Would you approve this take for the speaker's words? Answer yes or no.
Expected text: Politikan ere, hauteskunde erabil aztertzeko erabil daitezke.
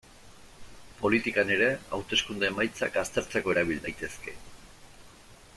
no